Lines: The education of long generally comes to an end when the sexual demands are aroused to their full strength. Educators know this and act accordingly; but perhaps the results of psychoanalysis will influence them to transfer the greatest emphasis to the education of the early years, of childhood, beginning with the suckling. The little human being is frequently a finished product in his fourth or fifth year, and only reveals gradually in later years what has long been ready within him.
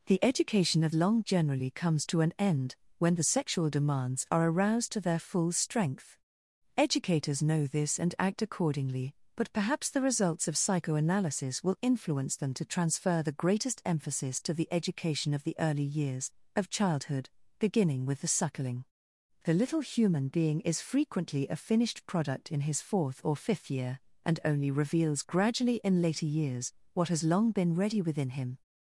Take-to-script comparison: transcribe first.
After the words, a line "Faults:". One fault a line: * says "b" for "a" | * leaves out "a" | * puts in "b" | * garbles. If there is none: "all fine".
The education of long generally comes to an end when the sexual demands are aroused to their full strength. Educators know this and act accordingly; but perhaps the results of psychoanalysis will influence them to transfer the greatest emphasis to the education of the early years, of childhood, beginning with the suckling. The little human being is frequently a finished product in his fourth or fifth year, and only reveals gradually in later years what has long been ready within him.
Faults:
all fine